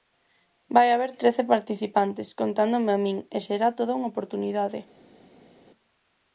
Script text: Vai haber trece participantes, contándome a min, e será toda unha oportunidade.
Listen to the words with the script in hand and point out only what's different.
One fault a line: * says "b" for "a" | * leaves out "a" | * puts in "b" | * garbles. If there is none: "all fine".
all fine